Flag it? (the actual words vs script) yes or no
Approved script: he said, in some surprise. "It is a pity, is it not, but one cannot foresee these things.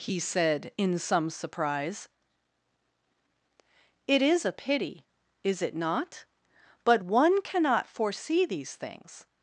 no